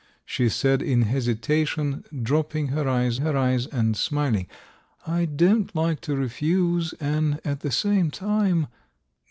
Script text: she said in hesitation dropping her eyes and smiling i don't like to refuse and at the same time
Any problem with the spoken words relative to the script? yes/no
yes